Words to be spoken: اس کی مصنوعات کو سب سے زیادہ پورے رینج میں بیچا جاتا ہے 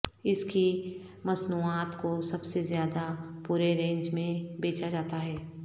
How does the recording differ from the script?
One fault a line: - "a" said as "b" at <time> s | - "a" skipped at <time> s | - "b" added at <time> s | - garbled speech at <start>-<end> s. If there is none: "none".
none